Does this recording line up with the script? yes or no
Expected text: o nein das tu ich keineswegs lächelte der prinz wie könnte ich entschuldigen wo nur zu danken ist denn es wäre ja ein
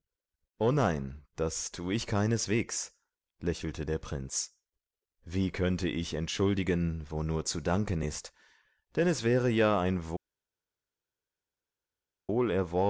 yes